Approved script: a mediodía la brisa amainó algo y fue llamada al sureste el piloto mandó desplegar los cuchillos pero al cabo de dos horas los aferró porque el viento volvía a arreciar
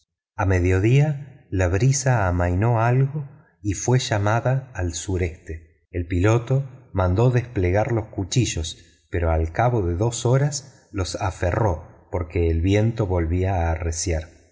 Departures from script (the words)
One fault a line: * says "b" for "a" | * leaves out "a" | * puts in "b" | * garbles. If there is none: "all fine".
all fine